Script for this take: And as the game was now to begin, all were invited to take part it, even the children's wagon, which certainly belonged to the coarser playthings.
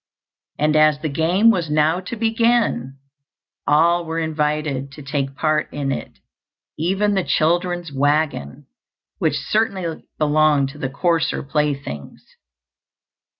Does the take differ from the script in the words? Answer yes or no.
yes